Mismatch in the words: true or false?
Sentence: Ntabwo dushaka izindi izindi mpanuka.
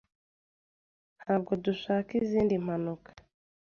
true